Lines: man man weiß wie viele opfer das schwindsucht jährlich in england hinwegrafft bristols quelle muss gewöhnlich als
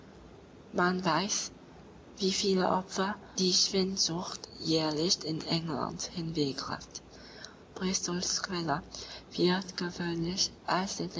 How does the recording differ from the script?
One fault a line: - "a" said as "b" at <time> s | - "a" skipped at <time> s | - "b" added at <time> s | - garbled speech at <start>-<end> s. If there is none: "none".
- "man" skipped at 1.0 s
- "das" said as "die" at 3.4 s
- "muss" said as "wird" at 9.3 s